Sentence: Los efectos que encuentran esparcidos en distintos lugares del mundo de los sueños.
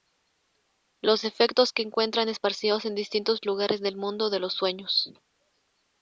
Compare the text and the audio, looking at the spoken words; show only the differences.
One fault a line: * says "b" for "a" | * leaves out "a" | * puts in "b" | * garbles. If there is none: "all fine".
all fine